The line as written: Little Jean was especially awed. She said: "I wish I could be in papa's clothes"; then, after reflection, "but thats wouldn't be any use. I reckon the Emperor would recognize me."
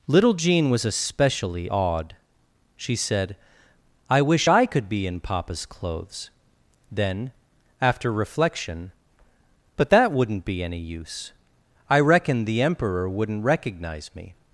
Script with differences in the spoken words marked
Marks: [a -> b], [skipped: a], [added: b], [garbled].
Little Jean was especially awed. She said: "I wish I could be in papa's clothes"; then, after reflection, "but [thats -> that] wouldn't be any use. I reckon the Emperor [would -> wouldn't] recognize me."